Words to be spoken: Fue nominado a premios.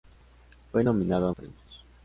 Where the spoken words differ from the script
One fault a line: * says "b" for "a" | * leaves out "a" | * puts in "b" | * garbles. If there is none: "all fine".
all fine